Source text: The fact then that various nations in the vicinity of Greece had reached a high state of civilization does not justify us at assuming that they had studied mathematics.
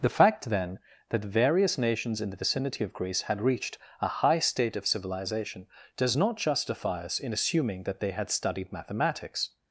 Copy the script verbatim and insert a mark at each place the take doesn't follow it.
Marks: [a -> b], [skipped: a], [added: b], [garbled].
The fact then that various nations in the vicinity of Greece had reached a high state of civilization does not justify us [at -> in] assuming that they had studied mathematics.